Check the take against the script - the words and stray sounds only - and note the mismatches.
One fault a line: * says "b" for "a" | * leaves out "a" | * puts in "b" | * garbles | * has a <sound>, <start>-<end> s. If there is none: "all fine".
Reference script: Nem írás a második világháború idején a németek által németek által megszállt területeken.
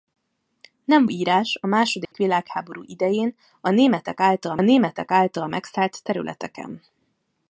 * has a dropout, 2.0-2.1 s